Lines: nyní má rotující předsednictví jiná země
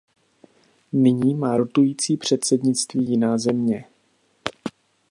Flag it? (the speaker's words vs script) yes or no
no